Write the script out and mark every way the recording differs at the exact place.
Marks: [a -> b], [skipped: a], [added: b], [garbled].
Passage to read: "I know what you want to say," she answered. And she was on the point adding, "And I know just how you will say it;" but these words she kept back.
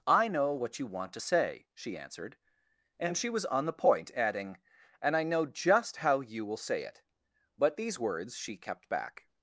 "I know what you want to say," she answered. And she was on the point adding, "And I know just how you will say it;" but these words she kept back.